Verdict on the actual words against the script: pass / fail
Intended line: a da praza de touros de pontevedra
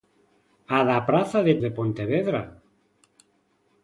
fail